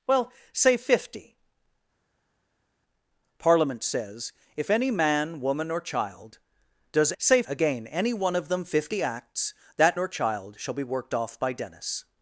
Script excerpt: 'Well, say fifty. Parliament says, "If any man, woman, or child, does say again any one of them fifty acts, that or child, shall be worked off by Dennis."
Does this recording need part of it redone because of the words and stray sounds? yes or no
no